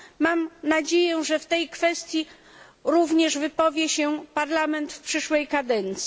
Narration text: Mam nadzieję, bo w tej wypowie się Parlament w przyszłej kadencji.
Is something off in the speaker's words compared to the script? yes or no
yes